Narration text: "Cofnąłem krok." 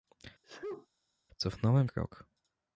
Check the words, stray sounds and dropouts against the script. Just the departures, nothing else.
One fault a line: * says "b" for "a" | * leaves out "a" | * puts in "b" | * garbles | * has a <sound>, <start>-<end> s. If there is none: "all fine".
* has a sneeze, 0.4-0.9 s